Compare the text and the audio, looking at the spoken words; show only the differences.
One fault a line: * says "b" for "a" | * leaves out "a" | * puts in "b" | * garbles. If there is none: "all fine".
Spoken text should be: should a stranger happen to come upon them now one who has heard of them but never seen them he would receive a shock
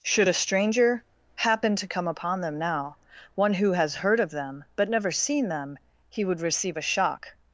all fine